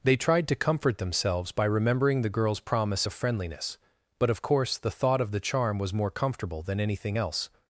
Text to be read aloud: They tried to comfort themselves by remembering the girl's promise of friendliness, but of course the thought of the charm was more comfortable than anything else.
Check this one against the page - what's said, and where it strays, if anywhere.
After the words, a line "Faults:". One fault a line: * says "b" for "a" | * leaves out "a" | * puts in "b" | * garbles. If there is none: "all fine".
They tried to comfort themselves by remembering the girl's promise of friendliness, but of course the thought of the charm was more comfortable than anything else.
Faults:
all fine